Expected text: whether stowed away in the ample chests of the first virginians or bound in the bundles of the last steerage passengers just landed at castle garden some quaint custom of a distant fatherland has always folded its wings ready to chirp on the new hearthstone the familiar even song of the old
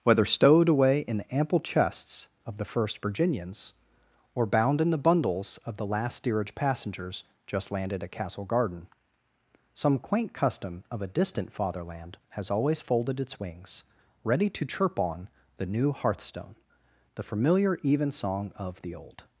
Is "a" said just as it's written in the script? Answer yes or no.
yes